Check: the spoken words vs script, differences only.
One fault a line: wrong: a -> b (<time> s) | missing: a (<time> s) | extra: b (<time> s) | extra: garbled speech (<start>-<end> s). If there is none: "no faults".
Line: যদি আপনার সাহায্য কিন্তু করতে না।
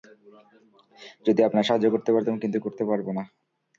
extra: করতে পারতাম (1.9 s)
extra: পারব (2.8 s)